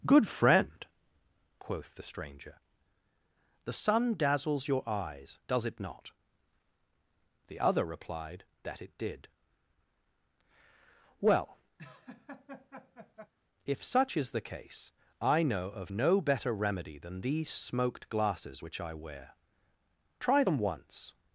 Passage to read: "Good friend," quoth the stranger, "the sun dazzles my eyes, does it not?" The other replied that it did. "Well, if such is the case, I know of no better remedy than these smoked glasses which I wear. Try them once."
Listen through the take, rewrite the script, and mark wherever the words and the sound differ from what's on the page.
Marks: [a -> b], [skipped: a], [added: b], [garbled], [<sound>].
"Good friend," quoth the stranger, "the sun dazzles [my -> your] eyes, does it not?" The other replied that it did. "Well, [laugh] if such is the case, I know of no better remedy than these smoked glasses which I wear. Try them once."